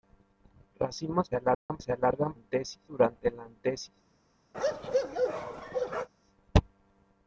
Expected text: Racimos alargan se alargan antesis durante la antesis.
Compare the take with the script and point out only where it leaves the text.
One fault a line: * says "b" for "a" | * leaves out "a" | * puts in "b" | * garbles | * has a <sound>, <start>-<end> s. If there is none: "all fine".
* has a dropout, 1.5-1.7 s
* has a bark, 4.5-6.1 s